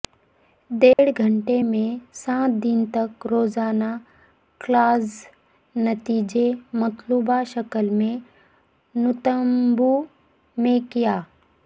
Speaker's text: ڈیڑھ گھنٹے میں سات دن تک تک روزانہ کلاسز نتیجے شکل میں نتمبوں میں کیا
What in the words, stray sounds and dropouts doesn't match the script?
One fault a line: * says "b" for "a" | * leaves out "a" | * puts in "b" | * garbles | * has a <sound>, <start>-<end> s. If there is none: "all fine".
* has a dropout, 0.9-1.0 s
* leaves out "تک"
* puts in "مطلوبہ"